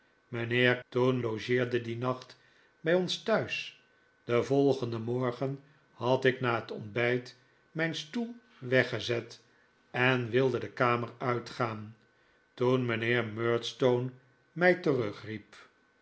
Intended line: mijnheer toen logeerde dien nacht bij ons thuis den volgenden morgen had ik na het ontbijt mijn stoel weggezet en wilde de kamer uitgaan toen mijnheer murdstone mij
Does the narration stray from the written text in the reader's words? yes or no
no